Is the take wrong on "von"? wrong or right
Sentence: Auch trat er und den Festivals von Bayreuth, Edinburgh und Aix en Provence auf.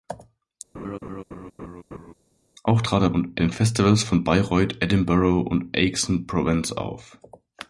right